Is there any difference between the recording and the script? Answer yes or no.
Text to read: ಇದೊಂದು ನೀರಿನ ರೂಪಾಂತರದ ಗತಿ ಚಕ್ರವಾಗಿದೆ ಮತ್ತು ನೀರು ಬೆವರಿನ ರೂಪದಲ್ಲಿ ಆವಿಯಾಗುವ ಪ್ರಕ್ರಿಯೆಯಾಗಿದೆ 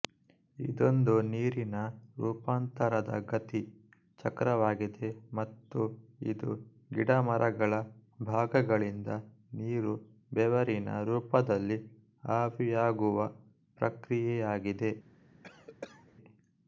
yes